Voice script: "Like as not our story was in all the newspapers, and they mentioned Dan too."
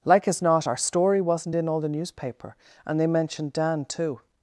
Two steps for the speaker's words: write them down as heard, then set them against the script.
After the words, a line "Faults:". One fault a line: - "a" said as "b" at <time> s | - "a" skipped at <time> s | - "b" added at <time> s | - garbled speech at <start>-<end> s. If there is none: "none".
"Like as not our story wasn't in all the newspaper, and they mentioned Dan too."
Faults:
- "was" said as "wasn't" at 1.2 s
- "newspapers" said as "newspaper" at 1.9 s